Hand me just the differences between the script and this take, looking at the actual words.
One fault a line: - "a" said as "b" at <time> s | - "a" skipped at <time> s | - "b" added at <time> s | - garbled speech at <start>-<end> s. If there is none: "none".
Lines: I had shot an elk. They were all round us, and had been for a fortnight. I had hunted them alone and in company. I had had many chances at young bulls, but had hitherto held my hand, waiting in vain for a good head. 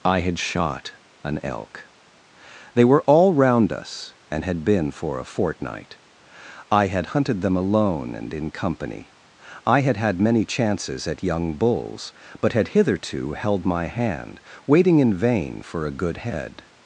none